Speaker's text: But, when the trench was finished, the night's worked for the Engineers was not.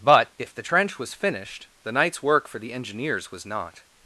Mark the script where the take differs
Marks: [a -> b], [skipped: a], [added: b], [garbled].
But, [when -> if] the trench was finished, the night's [worked -> work] for the Engineers was not.